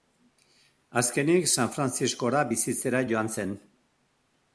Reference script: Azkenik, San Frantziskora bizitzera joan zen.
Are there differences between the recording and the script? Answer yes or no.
no